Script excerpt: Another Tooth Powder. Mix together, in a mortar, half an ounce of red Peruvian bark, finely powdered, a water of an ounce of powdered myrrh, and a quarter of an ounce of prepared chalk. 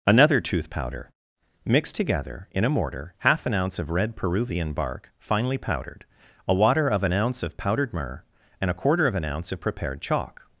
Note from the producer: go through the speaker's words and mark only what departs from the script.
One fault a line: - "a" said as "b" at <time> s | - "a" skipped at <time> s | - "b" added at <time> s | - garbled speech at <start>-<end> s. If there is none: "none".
none